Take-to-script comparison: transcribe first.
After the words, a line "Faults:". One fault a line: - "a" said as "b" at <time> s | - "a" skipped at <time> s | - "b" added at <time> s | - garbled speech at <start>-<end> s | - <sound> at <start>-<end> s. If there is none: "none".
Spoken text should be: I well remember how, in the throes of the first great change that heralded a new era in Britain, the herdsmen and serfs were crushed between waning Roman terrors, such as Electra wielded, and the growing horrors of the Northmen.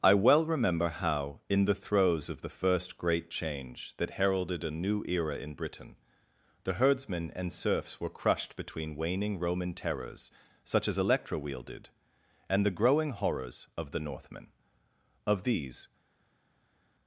I well remember how, in the throes of the first great change that heralded a new era in Britain, the herdsmen and serfs were crushed between waning Roman terrors, such as Electra wielded, and the growing horrors of the Northmen. Of these
Faults:
- "Of these" added at 15.3 s